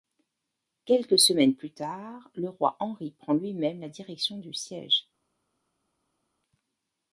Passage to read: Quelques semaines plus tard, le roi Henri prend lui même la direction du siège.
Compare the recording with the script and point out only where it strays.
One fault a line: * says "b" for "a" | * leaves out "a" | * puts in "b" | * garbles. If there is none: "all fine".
all fine